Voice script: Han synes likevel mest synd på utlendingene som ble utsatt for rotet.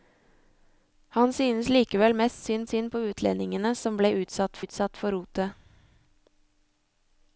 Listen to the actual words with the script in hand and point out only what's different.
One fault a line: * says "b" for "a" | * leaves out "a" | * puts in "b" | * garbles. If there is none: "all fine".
* puts in "synd"
* puts in "utsatt"